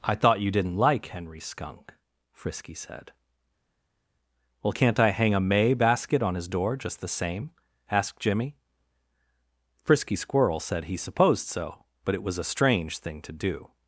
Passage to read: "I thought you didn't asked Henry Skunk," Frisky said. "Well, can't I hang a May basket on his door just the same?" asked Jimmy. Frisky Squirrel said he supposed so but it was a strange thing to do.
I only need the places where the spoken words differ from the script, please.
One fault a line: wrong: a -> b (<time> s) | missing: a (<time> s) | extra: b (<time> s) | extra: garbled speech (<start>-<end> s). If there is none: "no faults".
wrong: asked -> like (0.8 s)